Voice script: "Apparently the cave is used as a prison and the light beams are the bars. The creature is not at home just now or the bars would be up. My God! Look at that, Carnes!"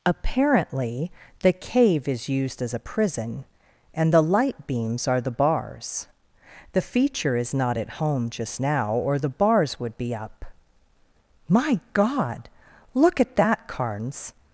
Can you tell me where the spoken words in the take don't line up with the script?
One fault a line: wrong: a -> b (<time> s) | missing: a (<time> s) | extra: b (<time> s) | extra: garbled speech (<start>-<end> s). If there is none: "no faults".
wrong: creature -> feature (6.8 s)